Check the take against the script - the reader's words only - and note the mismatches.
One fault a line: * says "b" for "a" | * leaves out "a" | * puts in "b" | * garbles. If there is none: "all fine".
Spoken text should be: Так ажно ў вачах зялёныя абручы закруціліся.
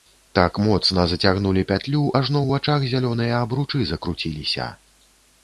* puts in "моцна зацягнулі пятлю"